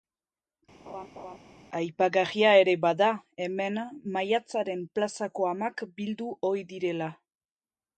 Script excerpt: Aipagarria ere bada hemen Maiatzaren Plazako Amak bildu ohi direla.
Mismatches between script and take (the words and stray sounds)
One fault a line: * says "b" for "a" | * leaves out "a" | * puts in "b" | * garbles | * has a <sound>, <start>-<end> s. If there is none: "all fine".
* has a laugh, 0.9-1.4 s